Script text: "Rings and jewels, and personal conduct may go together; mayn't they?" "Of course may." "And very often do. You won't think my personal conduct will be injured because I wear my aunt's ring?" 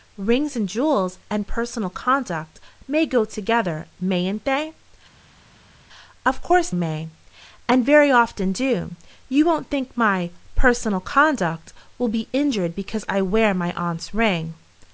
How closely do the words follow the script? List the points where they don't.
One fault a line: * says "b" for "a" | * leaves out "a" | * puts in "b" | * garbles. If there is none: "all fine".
all fine